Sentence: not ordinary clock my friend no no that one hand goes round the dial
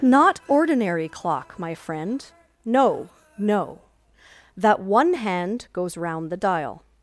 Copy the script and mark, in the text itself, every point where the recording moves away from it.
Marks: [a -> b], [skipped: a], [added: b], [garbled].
not ordinary clock my friend no no that one hand goes round the dial